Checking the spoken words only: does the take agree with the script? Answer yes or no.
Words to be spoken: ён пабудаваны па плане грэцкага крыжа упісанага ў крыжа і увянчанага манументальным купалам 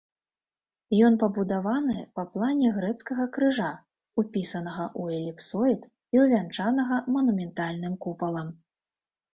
no